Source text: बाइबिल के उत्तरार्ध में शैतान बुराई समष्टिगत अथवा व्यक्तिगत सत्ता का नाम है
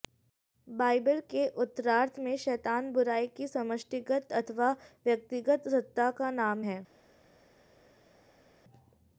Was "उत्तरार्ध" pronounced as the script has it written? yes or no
yes